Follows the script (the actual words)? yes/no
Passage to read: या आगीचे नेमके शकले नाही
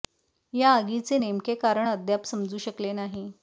no